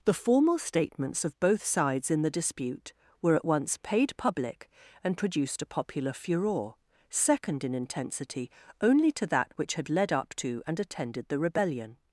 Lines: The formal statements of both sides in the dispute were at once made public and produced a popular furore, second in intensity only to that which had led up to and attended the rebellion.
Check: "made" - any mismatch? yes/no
yes